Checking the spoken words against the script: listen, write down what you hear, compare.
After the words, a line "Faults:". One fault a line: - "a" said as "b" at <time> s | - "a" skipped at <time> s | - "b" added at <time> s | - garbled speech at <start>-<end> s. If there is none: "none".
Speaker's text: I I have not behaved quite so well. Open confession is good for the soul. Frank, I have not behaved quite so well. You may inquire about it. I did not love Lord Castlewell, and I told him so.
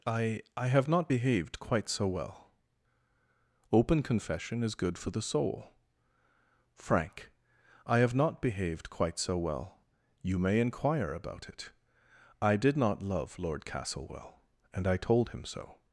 I I have not behaved quite so well. Open confession is good for the soul. Frank, I have not behaved quite so well. You may inquire about it. I did not love Lord Castlewell, and I told him so.
Faults:
none